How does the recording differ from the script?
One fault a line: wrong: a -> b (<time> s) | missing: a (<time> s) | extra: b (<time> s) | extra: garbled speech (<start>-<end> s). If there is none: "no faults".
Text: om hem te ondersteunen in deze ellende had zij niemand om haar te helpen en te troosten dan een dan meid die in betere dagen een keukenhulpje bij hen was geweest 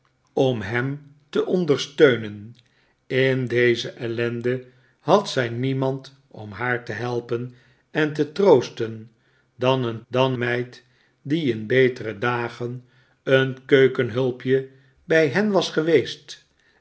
no faults